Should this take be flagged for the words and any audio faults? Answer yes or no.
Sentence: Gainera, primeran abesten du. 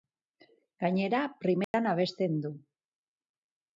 yes